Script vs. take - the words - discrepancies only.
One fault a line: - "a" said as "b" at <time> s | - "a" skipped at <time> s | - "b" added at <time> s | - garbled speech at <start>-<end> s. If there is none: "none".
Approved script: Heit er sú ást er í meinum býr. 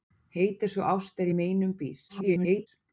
- garbled speech at 2.1-2.7 s